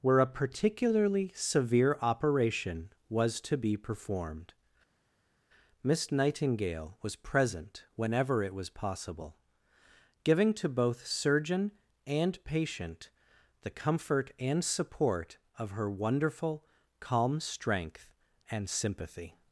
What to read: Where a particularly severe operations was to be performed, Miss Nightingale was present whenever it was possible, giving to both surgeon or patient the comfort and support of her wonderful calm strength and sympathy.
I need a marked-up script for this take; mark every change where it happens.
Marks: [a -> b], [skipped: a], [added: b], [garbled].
Where a particularly severe [operations -> operation] was to be performed, Miss Nightingale was present whenever it was possible, giving to both surgeon [or -> and] patient the comfort and support of her wonderful calm strength and sympathy.